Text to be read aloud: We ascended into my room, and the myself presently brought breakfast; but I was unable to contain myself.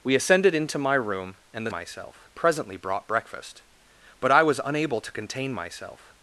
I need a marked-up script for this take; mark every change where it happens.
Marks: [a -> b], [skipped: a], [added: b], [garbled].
We ascended into my room, and the myself presently brought breakfast; but I was unable to contain myself.